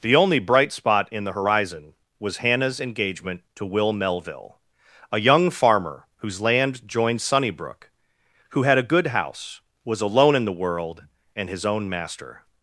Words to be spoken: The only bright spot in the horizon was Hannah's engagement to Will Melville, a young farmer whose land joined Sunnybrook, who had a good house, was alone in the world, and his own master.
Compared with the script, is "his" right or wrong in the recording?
right